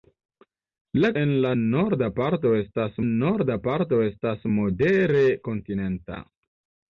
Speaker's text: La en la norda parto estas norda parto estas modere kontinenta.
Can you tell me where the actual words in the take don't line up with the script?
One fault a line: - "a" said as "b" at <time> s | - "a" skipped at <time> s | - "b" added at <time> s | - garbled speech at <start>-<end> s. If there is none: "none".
none